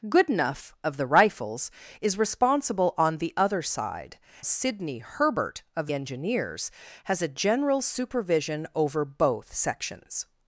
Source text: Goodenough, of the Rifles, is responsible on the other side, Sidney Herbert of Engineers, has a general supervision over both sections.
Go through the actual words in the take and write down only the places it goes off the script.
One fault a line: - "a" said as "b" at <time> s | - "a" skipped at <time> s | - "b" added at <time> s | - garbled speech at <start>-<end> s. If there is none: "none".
none